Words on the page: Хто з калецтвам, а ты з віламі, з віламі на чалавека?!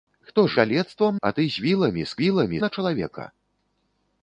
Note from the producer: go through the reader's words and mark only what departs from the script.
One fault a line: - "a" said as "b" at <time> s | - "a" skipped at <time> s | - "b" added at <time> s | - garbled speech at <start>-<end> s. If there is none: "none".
none